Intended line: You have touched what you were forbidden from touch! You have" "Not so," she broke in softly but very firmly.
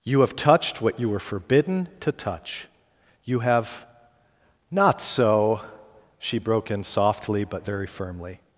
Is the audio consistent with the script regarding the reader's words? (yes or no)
no